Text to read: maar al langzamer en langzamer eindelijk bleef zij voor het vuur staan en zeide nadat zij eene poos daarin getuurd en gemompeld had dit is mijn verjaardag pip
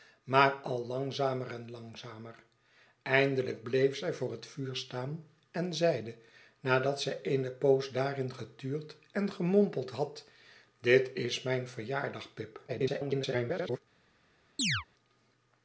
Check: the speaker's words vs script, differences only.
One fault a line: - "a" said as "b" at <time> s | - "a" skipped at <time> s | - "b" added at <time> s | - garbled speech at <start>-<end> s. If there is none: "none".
- garbled speech at 12.7-13.8 s